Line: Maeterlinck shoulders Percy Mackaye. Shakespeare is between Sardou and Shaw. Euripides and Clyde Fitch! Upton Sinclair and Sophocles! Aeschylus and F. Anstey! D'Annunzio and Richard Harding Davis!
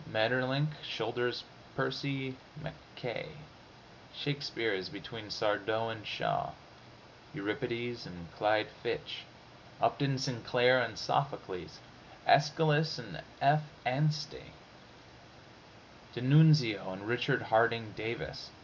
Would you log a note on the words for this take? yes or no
no